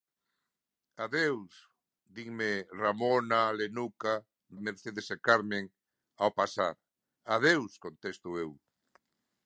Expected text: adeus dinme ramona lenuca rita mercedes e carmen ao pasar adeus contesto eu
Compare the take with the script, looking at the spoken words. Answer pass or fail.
fail